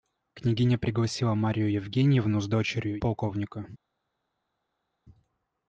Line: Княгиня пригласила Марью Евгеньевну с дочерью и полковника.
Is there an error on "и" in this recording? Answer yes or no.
yes